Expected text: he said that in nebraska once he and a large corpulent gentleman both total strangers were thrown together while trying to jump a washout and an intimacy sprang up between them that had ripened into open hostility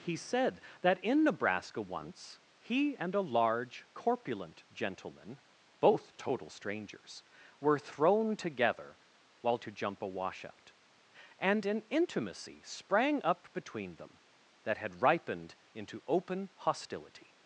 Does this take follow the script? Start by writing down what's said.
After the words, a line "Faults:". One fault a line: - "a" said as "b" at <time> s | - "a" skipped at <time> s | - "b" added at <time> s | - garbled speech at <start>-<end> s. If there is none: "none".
he said that in nebraska once he and a large corpulent gentleman both total strangers were thrown together while to jump a washout and an intimacy sprang up between them that had ripened into open hostility
Faults:
- "trying" skipped at 9.6 s